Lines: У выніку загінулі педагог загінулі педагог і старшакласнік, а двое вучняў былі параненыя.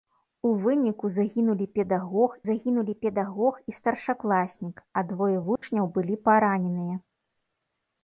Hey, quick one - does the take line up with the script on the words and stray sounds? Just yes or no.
no